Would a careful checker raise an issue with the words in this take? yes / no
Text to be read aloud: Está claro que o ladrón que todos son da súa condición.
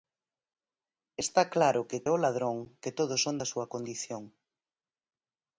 no